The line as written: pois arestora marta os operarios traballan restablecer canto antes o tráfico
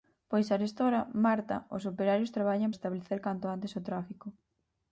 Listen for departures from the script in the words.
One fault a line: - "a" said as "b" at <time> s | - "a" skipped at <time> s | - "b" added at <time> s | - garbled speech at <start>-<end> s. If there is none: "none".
none